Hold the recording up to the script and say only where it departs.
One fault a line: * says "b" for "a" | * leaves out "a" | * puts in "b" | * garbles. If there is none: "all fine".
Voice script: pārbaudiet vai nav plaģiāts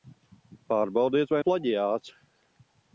* leaves out "nav"